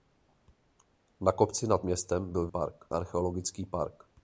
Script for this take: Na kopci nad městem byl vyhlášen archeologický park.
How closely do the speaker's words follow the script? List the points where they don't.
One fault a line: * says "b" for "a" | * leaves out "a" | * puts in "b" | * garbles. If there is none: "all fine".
* says "park" for "vyhlášen"